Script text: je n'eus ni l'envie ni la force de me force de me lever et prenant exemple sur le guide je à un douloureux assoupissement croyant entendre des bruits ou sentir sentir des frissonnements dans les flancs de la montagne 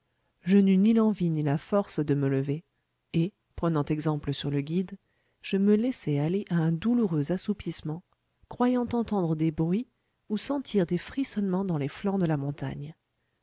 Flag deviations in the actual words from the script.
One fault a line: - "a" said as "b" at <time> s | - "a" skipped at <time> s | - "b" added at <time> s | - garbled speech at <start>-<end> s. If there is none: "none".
- "force de me" skipped at 2.3 s
- "me laissai aller" added at 5.6 s
- "sentir" skipped at 10.9 s